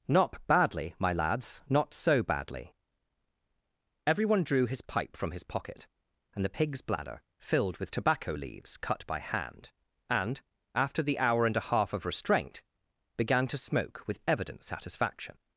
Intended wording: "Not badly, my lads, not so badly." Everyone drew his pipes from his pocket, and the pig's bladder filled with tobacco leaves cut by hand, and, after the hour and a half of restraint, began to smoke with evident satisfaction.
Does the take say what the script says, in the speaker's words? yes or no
no